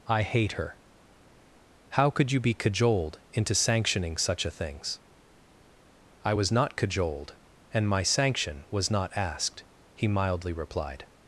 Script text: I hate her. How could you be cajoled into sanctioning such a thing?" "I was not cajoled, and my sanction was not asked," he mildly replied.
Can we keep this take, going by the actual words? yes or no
no